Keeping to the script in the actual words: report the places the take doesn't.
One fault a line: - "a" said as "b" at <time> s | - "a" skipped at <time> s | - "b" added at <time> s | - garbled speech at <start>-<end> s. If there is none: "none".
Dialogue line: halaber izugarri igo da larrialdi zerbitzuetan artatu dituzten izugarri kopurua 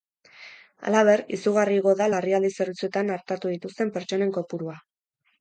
- "izugarri" said as "pertsonen" at 4.0 s